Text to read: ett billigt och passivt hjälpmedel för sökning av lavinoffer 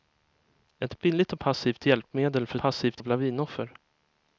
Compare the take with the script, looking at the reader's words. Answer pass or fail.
fail